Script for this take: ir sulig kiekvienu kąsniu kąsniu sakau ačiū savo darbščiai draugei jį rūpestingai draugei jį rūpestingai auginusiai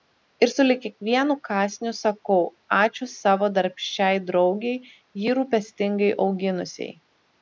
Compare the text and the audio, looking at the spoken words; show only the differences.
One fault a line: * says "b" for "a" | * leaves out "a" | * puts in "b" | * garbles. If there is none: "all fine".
* leaves out "kąsniu"
* leaves out "draugei jį rūpestingai"